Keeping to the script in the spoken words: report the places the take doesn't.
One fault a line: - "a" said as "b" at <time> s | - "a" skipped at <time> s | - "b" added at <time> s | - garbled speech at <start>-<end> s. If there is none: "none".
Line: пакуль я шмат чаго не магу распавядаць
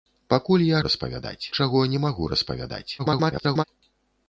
- "шмат" said as "распавядаць" at 0.9 s
- garbled speech at 3.0-3.6 s